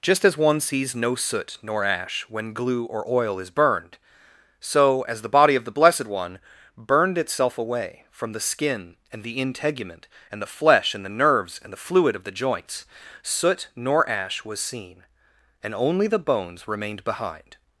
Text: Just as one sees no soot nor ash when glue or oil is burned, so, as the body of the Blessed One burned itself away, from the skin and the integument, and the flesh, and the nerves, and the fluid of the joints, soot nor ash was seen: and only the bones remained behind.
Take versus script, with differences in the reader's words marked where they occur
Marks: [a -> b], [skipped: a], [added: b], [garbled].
Just as one sees no soot nor ash when glue or oil is burned, so, as the body of the Blessed One burned itself away, from the skin and the integument, and the flesh, and the nerves, and the fluid of the joints, soot nor ash was seen: and only the bones remained behind.